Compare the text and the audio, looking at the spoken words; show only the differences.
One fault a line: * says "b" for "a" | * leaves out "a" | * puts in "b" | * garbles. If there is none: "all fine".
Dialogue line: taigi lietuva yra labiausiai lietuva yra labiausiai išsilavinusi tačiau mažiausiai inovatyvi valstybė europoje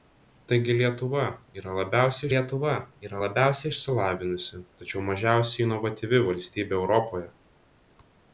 all fine